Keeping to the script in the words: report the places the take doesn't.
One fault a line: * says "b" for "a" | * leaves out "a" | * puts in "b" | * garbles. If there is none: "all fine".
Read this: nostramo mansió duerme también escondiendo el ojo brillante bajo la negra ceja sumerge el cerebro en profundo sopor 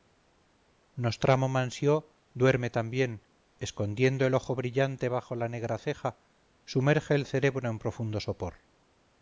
all fine